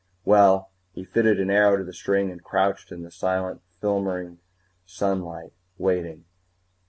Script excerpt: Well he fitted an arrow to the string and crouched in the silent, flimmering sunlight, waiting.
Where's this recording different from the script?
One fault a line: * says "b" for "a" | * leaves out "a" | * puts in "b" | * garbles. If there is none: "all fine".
all fine